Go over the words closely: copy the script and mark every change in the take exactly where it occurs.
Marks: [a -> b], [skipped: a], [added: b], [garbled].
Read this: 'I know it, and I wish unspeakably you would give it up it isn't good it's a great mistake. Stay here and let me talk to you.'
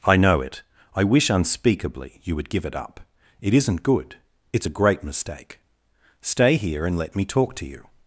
'I know it, [skipped: and] I wish unspeakably you would give it up it isn't good it's a great mistake. Stay here and let me talk to you.'